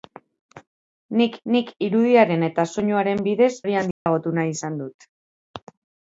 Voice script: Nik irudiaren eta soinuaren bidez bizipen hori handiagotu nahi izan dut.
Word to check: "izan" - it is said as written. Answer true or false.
true